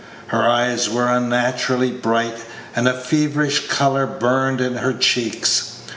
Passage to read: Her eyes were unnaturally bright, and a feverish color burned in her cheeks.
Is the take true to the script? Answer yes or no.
yes